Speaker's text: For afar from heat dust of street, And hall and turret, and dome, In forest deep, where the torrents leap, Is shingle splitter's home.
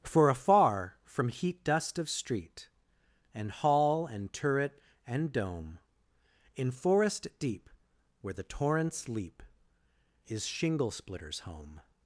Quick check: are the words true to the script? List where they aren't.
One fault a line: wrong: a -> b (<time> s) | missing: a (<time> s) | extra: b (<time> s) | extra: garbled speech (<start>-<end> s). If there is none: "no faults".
no faults